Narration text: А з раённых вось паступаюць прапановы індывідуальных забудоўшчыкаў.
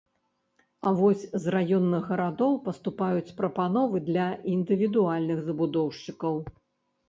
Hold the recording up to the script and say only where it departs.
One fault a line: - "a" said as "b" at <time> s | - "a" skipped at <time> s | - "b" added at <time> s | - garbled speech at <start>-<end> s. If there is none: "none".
- "вось" added at 1.0 s
- "вось" said as "гарадоў" at 2.1 s
- "для" added at 4.1 s